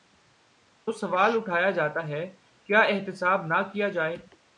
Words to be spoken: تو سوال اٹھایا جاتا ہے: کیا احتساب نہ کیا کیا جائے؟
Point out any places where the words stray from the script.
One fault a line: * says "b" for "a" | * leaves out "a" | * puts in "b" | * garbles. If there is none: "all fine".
* leaves out "کیا"